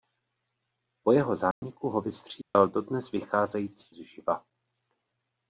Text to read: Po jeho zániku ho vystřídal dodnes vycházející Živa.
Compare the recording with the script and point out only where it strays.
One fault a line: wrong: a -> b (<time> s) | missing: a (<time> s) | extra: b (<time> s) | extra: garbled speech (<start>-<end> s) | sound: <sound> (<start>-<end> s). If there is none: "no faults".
sound: dropout (1.5-1.6 s)
sound: dropout (2.4-2.5 s)